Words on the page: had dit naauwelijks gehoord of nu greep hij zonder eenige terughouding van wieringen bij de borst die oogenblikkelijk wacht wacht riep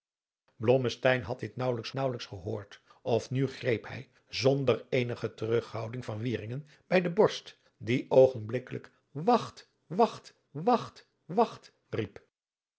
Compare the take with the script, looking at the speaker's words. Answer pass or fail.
fail